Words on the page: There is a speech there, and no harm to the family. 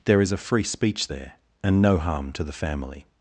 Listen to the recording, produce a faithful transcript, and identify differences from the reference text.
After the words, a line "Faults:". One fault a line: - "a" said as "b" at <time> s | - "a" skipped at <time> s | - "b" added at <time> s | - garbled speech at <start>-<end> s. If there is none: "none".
There is a free speech there, and no harm to the family.
Faults:
- "free" added at 0.4 s